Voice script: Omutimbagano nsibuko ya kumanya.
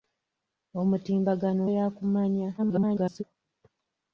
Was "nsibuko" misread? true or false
true